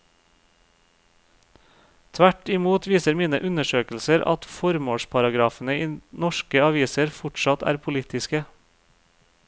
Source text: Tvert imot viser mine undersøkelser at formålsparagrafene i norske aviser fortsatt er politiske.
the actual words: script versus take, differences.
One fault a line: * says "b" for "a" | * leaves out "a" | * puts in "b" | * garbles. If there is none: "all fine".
all fine